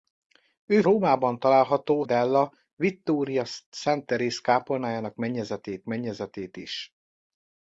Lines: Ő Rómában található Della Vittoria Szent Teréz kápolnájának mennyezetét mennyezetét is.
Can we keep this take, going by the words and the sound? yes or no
yes